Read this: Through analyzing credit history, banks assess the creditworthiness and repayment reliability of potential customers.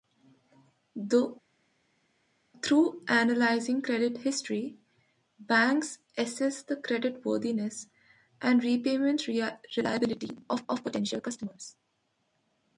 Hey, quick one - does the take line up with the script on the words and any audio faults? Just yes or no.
no